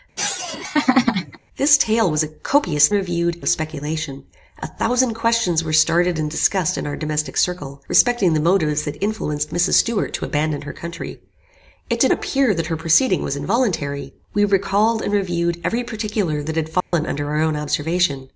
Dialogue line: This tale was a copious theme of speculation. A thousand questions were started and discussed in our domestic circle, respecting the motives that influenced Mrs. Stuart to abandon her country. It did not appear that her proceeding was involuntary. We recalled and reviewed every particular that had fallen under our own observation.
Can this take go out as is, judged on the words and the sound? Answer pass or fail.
fail